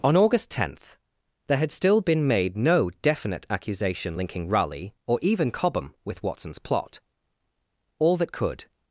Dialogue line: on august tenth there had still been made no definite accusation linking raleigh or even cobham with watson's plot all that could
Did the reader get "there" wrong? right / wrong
right